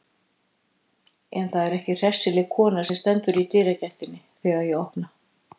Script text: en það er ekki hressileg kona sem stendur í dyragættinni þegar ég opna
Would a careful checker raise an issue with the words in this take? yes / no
no